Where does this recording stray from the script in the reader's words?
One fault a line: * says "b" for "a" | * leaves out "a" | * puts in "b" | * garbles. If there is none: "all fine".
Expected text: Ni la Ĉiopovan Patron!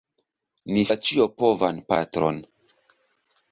all fine